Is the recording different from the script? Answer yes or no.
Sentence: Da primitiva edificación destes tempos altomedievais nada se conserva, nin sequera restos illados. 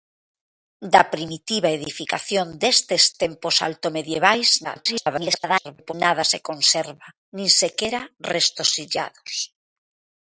yes